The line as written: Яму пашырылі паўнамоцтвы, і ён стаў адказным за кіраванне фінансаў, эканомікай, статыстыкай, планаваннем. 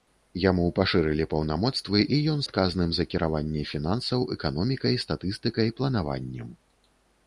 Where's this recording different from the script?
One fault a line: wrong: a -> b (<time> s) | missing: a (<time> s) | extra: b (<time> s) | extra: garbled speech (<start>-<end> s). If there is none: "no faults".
missing: стаў (2.4 s)